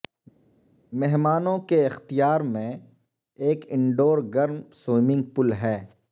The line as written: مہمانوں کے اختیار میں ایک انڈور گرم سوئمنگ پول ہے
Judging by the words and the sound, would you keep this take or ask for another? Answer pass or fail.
pass